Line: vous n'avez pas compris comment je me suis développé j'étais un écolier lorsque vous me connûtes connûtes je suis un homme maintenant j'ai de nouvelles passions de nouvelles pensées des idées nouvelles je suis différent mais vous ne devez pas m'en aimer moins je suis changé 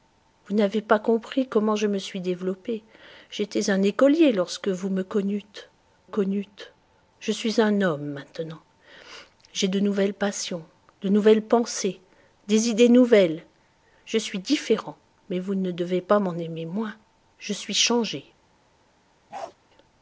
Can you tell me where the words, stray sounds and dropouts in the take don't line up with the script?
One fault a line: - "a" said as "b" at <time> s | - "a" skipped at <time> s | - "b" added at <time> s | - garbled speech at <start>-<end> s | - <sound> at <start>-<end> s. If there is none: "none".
- bark at 19.3-19.6 s